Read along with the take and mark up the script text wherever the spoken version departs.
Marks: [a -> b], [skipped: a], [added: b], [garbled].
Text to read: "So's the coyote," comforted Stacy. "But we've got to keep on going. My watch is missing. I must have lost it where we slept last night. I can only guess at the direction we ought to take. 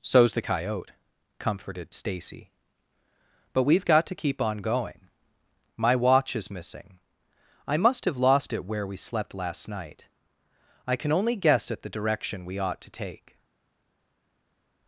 "So's the coyote," comforted Stacy. "But we've got to keep on going. My watch is missing. I must have lost it where we slept last night. I can only guess at the direction we ought to take.